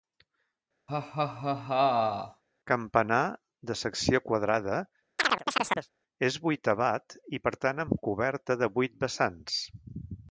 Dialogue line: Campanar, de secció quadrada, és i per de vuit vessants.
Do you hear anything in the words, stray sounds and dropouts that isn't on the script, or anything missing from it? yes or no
yes